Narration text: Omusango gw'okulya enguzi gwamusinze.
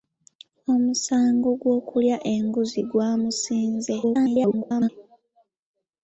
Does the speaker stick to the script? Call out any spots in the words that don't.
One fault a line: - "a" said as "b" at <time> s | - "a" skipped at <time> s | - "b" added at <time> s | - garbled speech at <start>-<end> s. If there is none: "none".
- garbled speech at 4.0-4.9 s